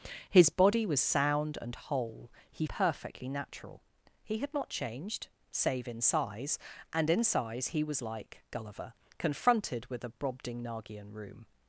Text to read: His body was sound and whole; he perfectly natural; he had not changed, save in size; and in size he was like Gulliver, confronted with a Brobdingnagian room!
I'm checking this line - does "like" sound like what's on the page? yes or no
yes